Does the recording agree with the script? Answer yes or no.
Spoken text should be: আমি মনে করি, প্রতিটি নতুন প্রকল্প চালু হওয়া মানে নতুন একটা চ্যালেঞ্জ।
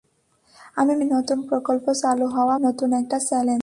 no